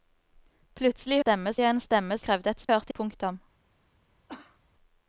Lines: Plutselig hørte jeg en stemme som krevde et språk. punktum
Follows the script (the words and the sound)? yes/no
no